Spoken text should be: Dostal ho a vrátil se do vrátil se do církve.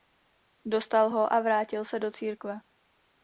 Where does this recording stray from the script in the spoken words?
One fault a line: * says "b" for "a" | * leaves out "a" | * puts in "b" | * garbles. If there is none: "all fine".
* leaves out "vrátil se do"